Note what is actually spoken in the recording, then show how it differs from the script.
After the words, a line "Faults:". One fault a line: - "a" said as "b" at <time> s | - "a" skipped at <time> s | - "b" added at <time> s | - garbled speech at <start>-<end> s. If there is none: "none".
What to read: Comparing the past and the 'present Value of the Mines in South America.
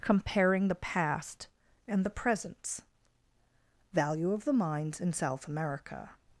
Comparing the past and the 'presents Value of the Mines in South America.
Faults:
- "present" said as "presents" at 2.1 s